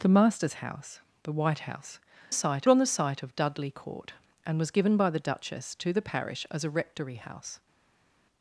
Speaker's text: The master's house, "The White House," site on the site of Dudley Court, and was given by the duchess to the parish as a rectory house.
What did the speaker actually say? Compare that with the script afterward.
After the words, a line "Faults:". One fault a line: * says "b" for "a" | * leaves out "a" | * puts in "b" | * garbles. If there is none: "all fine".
The master's house, "The White House," site on the site of Dudley Court, and was given by the duchess to the parish as a rectory house.
Faults:
all fine